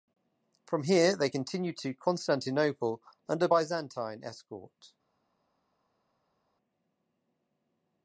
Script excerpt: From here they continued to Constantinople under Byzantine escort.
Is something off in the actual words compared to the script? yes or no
no